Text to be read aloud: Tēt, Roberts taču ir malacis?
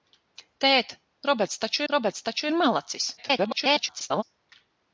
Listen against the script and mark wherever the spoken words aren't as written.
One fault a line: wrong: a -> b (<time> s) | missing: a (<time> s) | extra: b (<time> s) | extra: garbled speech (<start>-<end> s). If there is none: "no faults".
extra: Roberts taču (1.9 s)
extra: garbled speech (3.2-4.2 s)